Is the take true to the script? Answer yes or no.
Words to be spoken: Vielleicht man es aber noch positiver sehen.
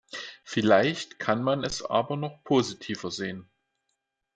no